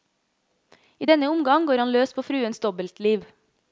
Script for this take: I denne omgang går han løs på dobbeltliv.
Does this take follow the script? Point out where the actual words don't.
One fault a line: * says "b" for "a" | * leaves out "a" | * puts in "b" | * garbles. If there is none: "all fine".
* puts in "fruens"